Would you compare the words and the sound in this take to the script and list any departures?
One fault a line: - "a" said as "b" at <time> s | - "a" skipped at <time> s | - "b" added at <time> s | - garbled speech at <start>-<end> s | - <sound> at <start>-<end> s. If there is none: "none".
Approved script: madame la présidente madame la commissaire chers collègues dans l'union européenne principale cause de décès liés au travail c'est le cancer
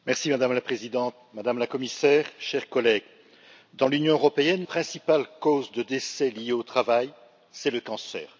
none